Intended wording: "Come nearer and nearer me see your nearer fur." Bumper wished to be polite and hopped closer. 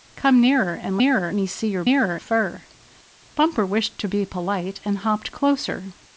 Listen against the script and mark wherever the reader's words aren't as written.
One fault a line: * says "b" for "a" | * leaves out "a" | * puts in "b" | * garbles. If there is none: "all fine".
all fine